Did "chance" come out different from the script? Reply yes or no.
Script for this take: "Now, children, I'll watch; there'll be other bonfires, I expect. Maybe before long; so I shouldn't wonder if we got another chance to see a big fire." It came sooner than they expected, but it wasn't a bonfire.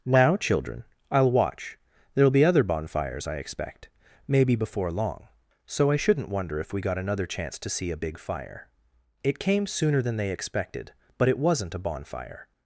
no